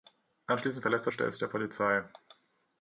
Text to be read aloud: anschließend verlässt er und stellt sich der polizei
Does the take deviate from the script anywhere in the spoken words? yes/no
no